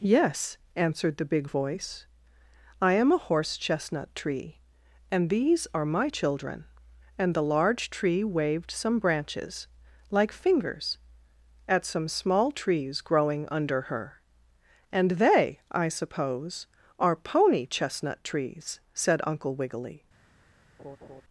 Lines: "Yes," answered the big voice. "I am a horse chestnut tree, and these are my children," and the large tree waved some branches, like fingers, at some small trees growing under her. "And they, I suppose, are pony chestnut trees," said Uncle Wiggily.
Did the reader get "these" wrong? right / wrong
right